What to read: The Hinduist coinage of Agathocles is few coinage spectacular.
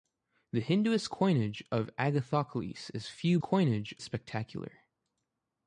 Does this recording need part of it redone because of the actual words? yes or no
no